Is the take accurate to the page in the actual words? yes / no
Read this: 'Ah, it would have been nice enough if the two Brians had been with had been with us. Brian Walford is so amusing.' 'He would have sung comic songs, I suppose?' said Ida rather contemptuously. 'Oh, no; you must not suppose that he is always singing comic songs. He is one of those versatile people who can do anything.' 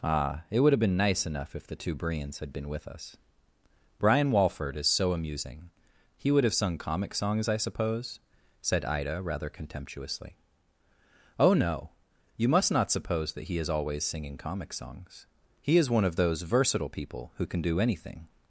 no